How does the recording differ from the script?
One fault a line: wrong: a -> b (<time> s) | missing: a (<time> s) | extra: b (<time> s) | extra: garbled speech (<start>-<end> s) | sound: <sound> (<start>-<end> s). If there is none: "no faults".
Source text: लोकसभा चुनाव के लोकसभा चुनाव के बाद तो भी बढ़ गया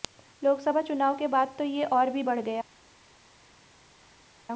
wrong: लोकसभा चुनाव के बाद तो -> बाद तो ये और (1.3 s)